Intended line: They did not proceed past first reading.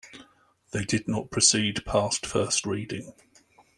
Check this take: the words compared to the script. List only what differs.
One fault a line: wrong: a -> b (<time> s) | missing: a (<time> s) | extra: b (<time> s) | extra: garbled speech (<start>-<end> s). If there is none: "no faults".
no faults